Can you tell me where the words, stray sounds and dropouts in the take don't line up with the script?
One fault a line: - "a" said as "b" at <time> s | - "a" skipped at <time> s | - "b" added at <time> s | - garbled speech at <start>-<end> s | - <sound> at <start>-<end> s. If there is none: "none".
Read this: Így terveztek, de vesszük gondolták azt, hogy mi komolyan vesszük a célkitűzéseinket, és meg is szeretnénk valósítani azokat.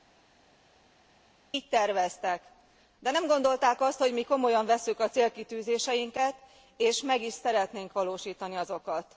- "vesszük" said as "nem" at 3.1 s